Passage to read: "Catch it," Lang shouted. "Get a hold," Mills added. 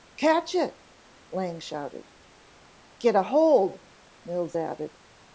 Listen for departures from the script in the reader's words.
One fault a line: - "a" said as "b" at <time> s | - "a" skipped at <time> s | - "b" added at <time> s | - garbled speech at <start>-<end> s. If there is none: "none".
none